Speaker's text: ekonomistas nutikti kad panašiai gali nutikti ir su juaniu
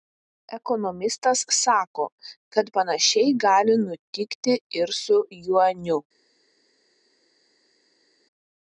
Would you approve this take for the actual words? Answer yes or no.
no